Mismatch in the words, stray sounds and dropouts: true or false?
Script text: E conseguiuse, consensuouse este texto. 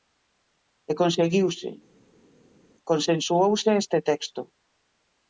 false